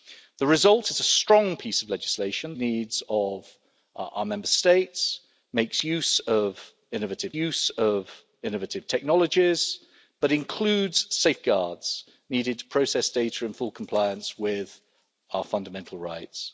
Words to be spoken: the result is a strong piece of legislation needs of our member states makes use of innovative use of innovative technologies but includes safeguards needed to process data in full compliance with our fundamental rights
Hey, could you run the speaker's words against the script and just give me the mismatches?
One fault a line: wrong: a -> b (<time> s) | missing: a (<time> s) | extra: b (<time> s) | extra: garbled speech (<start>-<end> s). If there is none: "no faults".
no faults